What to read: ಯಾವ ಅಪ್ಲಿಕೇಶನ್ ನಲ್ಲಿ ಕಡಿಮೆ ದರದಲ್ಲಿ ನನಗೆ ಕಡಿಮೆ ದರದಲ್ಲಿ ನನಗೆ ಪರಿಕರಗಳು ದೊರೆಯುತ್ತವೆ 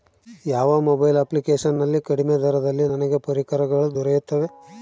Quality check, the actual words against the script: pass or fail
fail